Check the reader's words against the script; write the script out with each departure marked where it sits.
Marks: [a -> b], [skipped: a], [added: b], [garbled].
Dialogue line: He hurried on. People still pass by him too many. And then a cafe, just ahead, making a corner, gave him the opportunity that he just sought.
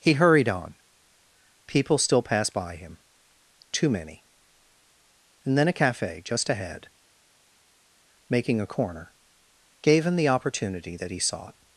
He hurried on. People still [pass -> passed] by him too many. And then a cafe, just ahead, making a corner, gave him the opportunity that he [skipped: just] sought.